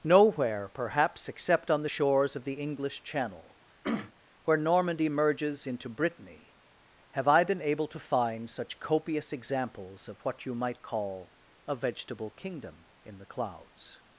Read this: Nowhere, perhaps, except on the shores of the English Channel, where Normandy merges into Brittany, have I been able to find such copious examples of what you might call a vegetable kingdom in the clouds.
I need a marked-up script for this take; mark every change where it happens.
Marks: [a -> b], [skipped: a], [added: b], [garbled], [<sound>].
Nowhere, perhaps, except on the shores of the English Channel, [throat clearing] where Normandy merges into Brittany, have I been able to find such copious examples of what you might call a vegetable kingdom in the clouds.